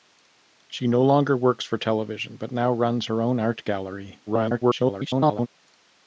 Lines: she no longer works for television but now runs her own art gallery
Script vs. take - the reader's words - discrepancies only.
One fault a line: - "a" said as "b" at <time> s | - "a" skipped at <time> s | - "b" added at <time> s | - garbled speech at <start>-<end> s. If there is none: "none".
- garbled speech at 4.3-5.5 s